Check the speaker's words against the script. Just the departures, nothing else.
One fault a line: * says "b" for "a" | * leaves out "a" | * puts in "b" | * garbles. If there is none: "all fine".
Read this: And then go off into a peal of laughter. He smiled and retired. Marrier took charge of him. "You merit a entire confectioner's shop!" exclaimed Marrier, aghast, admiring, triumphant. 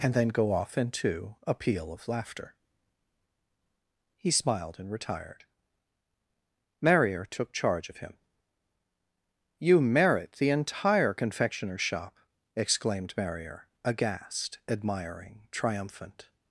* says "the" for "a"